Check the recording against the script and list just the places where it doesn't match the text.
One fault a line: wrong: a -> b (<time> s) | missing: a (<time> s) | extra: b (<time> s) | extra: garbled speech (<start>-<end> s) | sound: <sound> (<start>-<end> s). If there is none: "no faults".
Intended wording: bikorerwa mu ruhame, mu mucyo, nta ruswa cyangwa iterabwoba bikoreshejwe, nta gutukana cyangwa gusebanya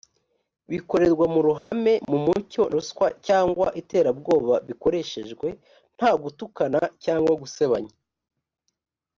sound: dropout (1.6-1.7 s)
missing: nta (2.6 s)